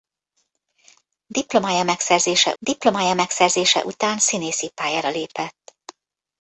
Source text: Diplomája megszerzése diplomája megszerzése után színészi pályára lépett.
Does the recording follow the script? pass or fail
pass